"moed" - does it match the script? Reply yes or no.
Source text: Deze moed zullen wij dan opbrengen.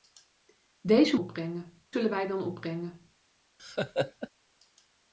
no